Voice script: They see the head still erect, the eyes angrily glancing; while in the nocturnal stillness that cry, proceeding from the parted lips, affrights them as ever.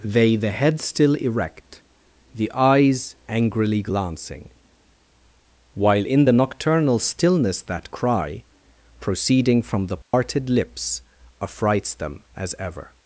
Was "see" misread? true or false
true